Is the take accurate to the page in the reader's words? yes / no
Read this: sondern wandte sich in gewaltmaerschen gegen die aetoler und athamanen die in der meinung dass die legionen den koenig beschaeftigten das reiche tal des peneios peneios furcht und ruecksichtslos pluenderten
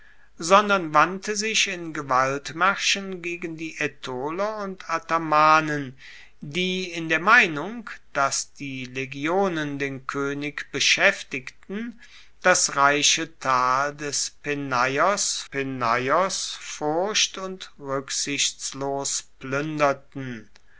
yes